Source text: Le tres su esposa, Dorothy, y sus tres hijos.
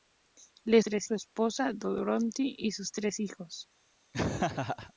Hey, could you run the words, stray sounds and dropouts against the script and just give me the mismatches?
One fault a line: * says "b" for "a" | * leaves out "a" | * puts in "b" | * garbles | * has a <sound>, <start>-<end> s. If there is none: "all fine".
* has a laugh, 4.1-4.9 s